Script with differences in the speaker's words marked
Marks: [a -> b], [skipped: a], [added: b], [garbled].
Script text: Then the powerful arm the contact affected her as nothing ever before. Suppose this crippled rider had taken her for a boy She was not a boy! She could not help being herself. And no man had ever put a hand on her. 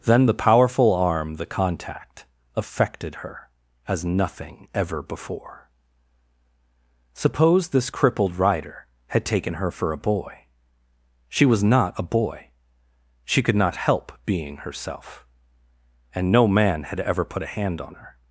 Then the powerful arm the contact affected her as nothing ever before. Suppose this crippled rider had taken her for a boy She was not a boy! She could not help being herself. And no man had ever put a hand on her.